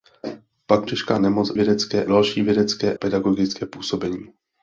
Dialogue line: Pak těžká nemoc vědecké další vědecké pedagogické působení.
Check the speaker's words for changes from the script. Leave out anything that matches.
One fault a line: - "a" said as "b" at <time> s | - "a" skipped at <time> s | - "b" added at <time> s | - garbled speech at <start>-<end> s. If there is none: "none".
none